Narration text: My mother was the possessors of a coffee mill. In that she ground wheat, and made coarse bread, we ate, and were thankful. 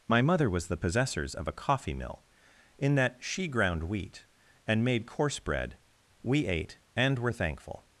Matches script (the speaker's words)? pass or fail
pass